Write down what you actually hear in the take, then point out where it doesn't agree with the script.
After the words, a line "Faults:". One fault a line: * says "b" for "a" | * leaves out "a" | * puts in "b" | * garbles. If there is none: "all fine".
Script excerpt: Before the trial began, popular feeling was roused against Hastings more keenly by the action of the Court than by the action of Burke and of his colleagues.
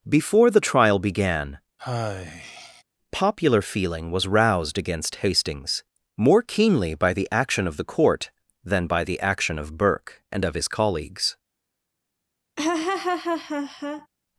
Before the trial began, popular feeling was roused against Hastings more keenly by the action of the Court than by the action of Burke and of his colleagues.
Faults:
all fine